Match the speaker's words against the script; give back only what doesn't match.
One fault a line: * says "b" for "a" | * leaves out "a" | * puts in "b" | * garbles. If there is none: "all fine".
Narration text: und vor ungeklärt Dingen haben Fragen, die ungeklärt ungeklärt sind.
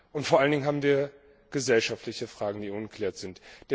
* says "allen" for "ungeklärt"
* puts in "wir gesellschaftliche"
* leaves out "ungeklärt"